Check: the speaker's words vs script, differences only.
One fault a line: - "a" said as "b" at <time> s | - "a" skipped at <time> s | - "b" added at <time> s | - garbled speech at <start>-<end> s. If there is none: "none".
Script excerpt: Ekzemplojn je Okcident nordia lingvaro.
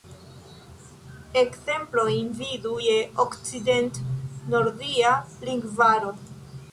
- "vidu" added at 2.4 s